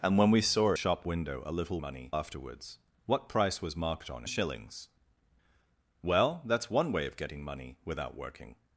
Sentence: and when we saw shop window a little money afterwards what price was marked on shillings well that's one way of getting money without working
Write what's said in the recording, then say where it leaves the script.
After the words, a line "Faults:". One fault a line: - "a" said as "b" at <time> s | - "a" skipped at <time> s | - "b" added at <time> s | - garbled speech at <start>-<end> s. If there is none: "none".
and when we saw shop window a little money afterwards what price was marked on shillings well that's one way of getting money without working
Faults:
none